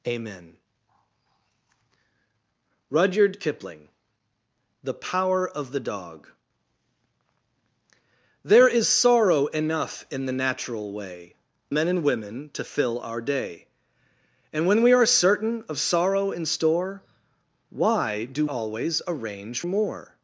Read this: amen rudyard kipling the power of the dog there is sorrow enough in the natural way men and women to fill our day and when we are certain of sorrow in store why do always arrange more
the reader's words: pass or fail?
pass